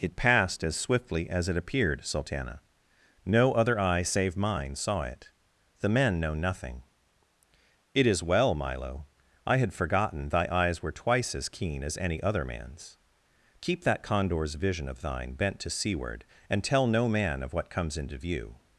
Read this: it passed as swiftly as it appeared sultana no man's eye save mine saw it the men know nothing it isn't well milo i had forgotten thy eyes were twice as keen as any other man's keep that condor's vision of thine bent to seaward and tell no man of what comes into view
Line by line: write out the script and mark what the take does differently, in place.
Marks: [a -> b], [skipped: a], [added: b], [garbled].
it passed as swiftly as it appeared sultana no [man's -> other] eye save mine saw it the men know nothing it [isn't -> is] well milo i had forgotten thy eyes were twice as keen as any other man's keep that condor's vision of thine bent to seaward and tell no man of what comes into view